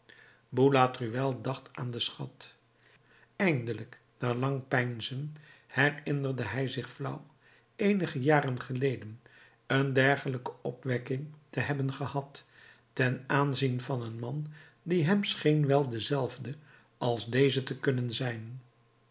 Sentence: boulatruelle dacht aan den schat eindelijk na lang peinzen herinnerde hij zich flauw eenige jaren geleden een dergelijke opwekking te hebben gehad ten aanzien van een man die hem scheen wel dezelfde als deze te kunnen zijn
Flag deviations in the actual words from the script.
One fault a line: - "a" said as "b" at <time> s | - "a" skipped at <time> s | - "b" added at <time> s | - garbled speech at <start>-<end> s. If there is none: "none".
none